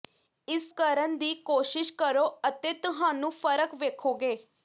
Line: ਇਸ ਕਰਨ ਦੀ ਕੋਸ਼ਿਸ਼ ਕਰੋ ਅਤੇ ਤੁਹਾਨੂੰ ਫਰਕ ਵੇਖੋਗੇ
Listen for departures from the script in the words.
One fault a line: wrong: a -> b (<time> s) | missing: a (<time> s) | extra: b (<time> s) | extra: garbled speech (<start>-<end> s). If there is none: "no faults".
no faults